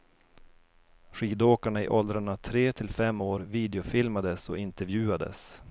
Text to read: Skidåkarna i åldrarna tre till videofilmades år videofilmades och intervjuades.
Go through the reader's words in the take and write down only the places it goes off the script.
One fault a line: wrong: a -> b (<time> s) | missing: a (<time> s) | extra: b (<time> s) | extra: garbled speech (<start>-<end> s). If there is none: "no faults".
wrong: videofilmades -> fem (2.9 s)